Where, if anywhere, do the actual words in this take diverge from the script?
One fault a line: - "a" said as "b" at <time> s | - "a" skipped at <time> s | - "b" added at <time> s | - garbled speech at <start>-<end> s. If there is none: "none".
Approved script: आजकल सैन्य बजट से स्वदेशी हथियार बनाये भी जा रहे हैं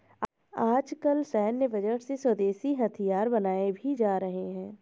none